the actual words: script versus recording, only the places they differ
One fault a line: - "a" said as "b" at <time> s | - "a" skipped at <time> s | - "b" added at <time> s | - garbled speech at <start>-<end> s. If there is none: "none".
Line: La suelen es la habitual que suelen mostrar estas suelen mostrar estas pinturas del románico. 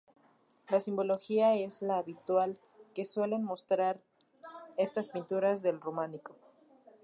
- "suelen" said as "simbología" at 0.8 s
- "suelen mostrar estas" skipped at 5.1 s